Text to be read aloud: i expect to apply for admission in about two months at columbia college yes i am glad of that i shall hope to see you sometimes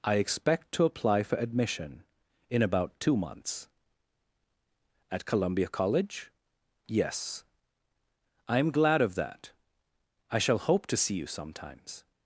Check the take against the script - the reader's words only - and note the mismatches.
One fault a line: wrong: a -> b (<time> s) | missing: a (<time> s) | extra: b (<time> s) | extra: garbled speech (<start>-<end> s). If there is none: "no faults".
no faults